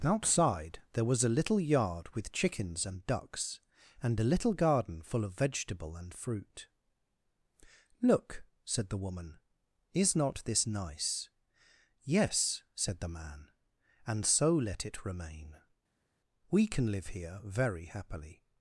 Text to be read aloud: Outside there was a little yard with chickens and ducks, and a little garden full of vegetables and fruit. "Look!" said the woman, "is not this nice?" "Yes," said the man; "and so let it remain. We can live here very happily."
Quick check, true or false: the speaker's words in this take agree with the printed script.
false